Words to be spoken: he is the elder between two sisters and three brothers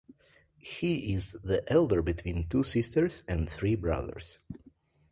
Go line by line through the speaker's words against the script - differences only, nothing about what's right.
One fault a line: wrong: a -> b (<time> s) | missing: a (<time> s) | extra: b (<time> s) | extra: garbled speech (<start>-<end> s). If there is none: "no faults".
no faults